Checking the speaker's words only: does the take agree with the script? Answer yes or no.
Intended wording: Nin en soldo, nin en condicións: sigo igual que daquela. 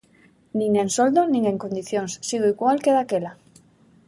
yes